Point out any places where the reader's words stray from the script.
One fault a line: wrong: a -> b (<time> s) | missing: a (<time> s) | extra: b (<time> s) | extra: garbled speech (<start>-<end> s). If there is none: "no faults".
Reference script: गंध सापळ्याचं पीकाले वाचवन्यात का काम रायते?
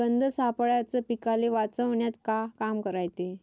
no faults